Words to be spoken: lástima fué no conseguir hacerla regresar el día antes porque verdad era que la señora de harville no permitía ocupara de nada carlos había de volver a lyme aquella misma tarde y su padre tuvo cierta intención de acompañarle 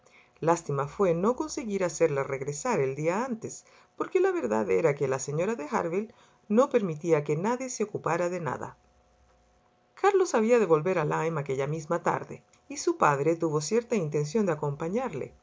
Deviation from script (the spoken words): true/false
true